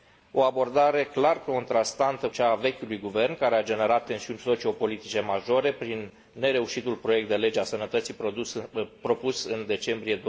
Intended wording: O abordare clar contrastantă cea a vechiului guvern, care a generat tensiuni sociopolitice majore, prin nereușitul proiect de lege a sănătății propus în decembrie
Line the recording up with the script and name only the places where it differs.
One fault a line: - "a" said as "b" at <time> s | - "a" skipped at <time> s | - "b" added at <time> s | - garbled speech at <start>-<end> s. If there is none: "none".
none